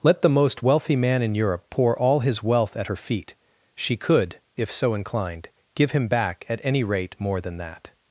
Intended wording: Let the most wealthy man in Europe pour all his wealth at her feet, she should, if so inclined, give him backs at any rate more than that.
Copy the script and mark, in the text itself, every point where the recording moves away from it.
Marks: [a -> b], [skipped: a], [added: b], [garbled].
Let the most wealthy man in Europe pour all his wealth at her feet, she [should, -> could] if so inclined, give him [backs -> back] at any rate more than that.